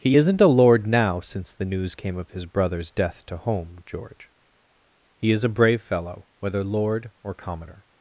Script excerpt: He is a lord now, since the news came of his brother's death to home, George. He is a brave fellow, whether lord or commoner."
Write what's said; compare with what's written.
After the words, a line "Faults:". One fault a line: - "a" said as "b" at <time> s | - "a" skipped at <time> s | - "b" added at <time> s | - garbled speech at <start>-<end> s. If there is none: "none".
He isn't a lord now, since the news came of his brother's death to home, George. He is a brave fellow, whether lord or commoner."
Faults:
- "is" said as "isn't" at 0.1 s